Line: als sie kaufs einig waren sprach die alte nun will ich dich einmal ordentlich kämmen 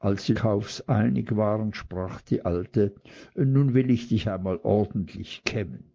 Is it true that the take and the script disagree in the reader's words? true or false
false